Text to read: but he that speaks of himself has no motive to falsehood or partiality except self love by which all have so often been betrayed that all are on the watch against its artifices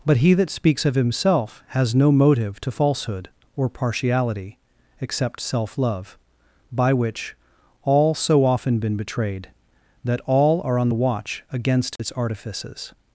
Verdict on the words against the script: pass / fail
fail